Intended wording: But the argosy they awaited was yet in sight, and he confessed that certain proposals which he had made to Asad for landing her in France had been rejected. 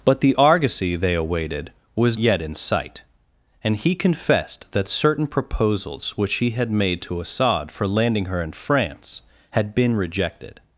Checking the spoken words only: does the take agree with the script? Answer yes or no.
yes